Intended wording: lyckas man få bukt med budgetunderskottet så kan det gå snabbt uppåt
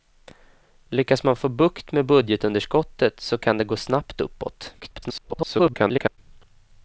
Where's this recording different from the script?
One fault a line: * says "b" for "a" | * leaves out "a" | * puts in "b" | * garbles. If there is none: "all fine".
* garbles